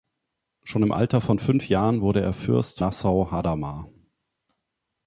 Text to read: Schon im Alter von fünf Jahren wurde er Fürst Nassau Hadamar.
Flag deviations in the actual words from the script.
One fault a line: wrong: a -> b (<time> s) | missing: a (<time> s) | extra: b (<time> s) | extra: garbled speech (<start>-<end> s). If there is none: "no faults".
no faults